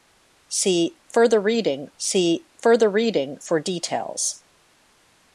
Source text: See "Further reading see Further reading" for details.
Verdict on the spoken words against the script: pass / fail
pass